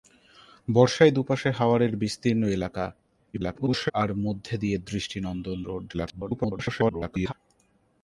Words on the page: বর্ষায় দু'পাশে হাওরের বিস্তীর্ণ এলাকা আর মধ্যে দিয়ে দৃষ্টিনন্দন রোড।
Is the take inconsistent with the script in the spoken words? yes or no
yes